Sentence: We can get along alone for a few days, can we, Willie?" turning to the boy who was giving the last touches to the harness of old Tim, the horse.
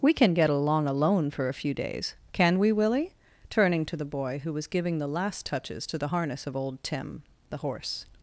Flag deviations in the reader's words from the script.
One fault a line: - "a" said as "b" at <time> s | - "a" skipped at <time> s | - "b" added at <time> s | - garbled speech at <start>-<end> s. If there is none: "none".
none